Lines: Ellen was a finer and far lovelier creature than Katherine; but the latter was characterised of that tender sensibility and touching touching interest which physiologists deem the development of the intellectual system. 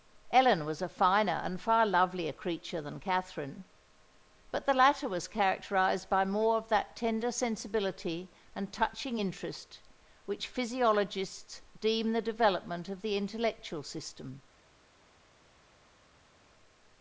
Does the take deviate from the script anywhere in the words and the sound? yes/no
yes